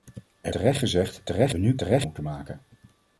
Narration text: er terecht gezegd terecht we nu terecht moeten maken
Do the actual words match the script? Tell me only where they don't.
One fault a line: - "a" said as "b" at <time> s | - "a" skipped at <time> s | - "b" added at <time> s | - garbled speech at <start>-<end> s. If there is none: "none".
none